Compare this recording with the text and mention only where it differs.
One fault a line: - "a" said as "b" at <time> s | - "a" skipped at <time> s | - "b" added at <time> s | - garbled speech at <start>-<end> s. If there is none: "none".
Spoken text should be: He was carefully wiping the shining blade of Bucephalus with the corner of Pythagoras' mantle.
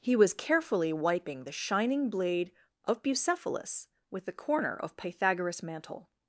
none